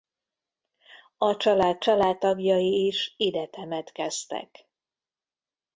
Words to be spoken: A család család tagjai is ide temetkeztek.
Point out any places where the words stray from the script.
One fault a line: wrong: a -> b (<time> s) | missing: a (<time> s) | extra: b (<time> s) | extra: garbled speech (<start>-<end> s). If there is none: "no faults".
no faults